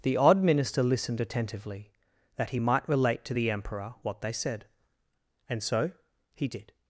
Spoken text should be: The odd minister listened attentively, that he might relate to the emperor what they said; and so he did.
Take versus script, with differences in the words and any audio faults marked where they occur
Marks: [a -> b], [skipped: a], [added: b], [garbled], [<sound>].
The odd minister listened attentively, that he might relate to the emperor what they said; and so he did.